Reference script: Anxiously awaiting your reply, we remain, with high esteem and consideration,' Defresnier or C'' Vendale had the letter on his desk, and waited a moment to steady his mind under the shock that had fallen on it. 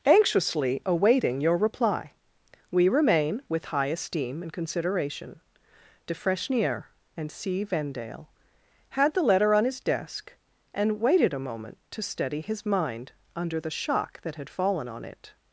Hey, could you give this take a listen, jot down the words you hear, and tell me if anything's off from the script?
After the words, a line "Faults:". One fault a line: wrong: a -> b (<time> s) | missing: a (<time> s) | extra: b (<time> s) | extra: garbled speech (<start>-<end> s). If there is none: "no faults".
Anxiously awaiting your reply, we remain, with high esteem and consideration,' Defresnier and C'' Vendale had the letter on his desk, and waited a moment to steady his mind under the shock that had fallen on it.
Faults:
wrong: or -> and (7.2 s)